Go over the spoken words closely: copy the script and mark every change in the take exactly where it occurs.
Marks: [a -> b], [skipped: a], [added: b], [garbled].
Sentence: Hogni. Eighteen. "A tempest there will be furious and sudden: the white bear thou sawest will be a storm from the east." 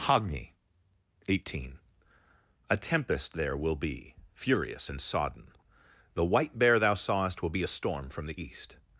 Hogni. Eighteen. "A tempest there will be furious and [sudden: -> sodden] the white bear thou sawest will be a storm from the east."